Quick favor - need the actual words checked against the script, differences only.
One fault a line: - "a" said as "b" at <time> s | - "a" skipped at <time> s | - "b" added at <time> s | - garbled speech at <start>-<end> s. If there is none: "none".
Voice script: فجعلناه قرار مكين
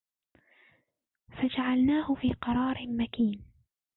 - "في" added at 2.2 s